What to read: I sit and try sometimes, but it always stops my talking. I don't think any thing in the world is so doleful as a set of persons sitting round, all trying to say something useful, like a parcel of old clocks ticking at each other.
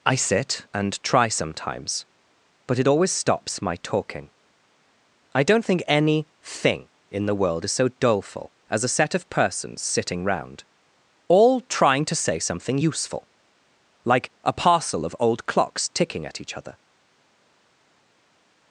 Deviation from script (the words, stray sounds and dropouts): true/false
false